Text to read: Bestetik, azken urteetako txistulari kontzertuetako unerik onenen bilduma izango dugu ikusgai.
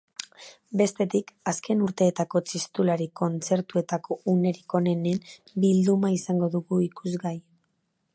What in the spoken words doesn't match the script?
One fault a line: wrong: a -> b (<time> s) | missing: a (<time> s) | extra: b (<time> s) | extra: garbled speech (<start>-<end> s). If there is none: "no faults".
no faults